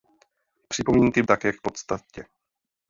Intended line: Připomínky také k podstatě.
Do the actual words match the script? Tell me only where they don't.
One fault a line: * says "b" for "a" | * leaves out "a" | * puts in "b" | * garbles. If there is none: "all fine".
all fine